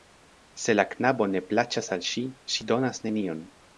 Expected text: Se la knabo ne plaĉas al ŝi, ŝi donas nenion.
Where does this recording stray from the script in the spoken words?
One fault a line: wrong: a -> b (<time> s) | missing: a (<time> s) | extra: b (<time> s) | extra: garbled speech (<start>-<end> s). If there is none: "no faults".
no faults